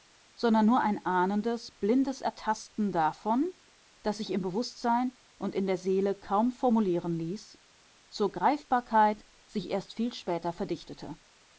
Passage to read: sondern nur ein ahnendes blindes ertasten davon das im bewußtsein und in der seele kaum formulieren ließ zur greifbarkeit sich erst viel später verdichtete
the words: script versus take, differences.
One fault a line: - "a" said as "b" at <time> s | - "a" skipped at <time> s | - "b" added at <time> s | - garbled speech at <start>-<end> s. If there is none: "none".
- "sich" added at 4.2 s